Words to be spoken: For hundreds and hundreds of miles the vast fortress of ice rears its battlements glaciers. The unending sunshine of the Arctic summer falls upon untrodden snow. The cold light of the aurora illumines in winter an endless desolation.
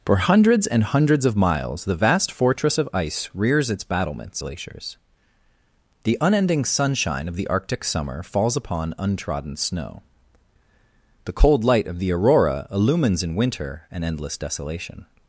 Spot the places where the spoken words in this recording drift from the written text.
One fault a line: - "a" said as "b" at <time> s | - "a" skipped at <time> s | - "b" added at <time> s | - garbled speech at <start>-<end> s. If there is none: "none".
none